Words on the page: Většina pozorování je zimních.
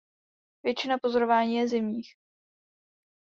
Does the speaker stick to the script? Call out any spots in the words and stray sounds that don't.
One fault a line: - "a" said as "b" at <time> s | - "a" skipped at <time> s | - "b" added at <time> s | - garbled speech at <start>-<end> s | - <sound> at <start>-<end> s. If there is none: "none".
none